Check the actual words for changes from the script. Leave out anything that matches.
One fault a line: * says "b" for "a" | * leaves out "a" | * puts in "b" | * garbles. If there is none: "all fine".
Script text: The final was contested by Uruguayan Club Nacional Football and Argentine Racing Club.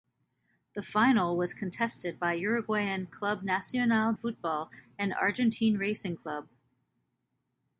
all fine